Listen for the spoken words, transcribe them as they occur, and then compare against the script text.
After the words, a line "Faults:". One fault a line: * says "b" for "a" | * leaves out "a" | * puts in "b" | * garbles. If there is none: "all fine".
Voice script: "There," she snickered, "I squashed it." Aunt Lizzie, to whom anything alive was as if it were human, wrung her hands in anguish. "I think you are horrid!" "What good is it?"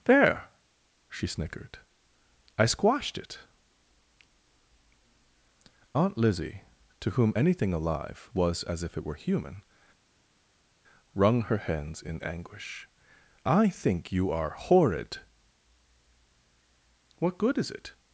"There," she snickered, "I squashed it." Aunt Lizzie, to whom anything alive was as if it were human, wrung her hands in anguish. "I think you are horrid!" "What good is it?"
Faults:
all fine